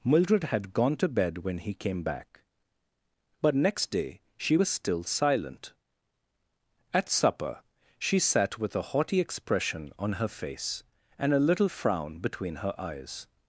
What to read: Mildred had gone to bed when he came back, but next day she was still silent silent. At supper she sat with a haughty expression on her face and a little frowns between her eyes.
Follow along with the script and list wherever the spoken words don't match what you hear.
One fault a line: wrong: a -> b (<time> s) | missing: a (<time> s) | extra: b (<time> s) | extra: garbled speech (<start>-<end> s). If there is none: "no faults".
missing: silent (5.7 s)
wrong: frowns -> frown (11.7 s)